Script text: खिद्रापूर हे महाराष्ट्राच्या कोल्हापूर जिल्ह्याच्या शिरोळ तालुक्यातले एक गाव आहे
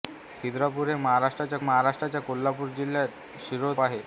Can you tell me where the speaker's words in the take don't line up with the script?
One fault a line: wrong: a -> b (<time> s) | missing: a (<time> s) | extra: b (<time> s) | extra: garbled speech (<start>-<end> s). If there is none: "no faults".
extra: महाराष्ट्राच्या (1.6 s)
missing: तालुक्यातले एक गाव (3.7 s)